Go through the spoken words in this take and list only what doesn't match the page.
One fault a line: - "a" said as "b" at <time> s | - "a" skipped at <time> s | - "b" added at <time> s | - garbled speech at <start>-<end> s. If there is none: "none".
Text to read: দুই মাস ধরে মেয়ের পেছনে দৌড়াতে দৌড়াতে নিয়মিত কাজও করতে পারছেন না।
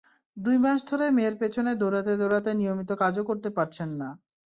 none